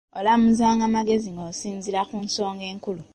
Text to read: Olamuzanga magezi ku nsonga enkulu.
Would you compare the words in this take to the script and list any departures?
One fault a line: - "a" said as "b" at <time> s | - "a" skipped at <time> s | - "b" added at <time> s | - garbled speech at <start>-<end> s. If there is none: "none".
- "ng'osinziira" added at 1.3 s